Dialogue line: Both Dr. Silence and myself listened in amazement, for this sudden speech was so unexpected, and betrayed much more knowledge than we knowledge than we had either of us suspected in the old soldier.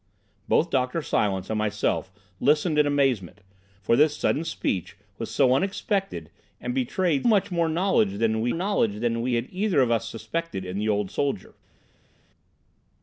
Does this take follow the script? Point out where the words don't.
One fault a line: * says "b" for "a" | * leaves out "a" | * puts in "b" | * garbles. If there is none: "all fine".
all fine